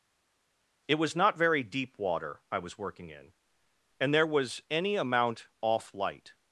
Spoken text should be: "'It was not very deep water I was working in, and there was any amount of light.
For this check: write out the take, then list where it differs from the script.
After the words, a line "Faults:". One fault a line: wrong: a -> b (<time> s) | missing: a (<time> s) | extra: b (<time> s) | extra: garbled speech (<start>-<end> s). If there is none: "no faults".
"'It was not very deep water I was working in, and there was any amount off light.
Faults:
wrong: of -> off (5.6 s)